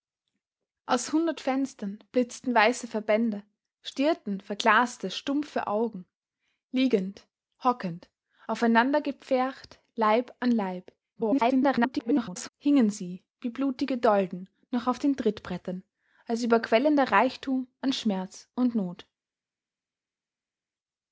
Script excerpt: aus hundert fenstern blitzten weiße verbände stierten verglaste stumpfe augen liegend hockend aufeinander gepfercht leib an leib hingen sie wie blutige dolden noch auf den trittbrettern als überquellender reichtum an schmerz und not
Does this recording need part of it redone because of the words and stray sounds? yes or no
yes